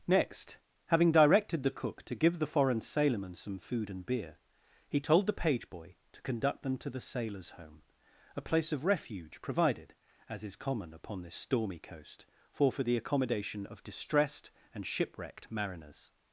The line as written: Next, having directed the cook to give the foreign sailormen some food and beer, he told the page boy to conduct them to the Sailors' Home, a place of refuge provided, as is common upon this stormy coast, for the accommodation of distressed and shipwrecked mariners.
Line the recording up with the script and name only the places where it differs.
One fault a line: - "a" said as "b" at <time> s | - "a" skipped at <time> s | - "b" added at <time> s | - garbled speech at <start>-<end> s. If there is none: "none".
- "for" added at 12.7 s